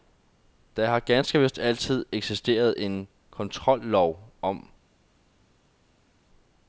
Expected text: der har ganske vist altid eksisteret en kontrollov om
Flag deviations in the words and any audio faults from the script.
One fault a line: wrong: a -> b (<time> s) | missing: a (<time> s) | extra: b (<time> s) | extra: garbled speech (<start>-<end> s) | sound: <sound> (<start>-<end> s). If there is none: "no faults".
no faults